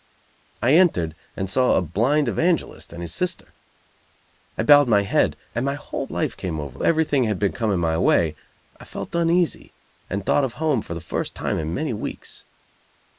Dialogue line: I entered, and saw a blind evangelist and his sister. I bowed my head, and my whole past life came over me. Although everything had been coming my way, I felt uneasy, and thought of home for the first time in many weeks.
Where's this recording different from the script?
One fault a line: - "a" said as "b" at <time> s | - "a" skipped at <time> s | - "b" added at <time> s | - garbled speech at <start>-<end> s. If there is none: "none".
- "past" skipped at 6.1 s
- "me Although" skipped at 6.8 s